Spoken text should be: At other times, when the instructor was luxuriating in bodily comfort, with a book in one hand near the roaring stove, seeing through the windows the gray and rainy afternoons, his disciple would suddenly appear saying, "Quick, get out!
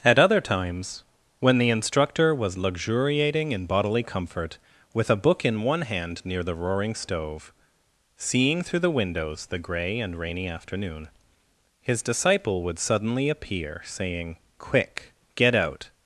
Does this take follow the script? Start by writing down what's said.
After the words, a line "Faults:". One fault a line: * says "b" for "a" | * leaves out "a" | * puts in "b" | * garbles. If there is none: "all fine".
At other times, when the instructor was luxuriating in bodily comfort, with a book in one hand near the roaring stove, seeing through the windows the gray and rainy afternoon, his disciple would suddenly appear saying, "Quick, get out!
Faults:
* says "afternoon" for "afternoons"